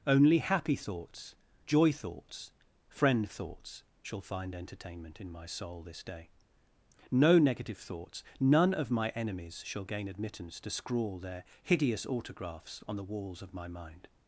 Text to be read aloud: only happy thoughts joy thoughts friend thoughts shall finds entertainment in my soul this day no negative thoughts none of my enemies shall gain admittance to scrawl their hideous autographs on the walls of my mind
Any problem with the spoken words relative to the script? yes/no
yes